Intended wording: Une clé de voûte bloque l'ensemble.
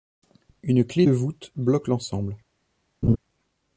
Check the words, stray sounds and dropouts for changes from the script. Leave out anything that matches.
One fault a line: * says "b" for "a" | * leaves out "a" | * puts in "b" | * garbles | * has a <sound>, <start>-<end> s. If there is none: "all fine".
* has a laugh, 3.0-3.2 s